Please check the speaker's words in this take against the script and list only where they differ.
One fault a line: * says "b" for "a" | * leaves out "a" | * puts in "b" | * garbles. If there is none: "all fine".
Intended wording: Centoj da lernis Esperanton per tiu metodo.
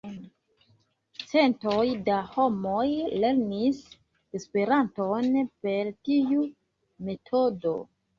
* puts in "homoj"